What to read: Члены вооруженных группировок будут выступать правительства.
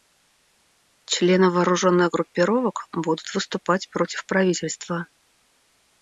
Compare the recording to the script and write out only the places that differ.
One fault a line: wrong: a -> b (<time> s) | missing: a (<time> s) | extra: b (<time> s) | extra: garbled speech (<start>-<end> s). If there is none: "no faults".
extra: против (3.9 s)